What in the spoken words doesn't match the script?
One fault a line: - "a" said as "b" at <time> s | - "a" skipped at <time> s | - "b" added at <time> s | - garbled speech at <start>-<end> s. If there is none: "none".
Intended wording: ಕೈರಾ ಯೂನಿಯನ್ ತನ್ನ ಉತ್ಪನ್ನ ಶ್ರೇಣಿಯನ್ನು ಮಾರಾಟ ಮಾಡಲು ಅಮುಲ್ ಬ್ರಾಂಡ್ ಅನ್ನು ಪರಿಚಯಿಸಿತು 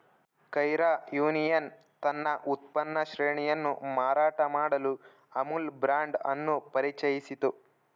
none